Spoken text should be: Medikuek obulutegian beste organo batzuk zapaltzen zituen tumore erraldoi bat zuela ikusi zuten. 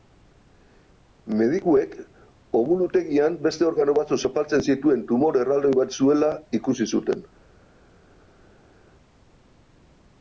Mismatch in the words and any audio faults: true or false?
false